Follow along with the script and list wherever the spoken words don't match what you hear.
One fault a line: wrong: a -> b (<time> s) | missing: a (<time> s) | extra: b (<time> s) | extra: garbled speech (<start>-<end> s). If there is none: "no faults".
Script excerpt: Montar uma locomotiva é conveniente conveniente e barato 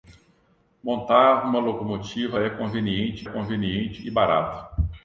no faults